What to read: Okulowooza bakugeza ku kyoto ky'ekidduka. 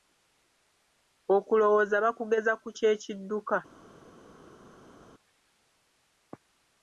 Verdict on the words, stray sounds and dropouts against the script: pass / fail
fail